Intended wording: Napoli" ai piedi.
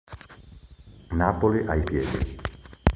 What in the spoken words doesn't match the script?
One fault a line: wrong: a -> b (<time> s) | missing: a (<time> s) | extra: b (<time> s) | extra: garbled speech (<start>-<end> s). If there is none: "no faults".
no faults